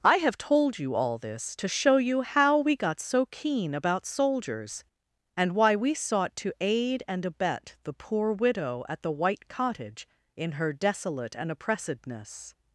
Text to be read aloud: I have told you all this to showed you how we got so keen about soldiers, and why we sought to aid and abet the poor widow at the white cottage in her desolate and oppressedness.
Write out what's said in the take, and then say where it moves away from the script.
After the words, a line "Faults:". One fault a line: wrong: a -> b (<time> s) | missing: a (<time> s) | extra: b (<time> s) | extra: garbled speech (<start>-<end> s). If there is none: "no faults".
I have told you all this to show you how we got so keen about soldiers, and why we sought to aid and abet the poor widow at the white cottage in her desolate and oppressedness.
Faults:
wrong: showed -> show (1.7 s)